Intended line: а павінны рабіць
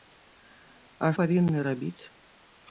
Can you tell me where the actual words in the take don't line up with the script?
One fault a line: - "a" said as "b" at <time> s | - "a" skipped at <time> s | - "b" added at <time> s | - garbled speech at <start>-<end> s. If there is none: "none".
none